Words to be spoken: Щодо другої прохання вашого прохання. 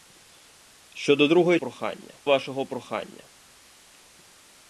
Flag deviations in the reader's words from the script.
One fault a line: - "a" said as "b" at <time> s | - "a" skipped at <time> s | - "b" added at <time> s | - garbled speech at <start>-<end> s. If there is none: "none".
none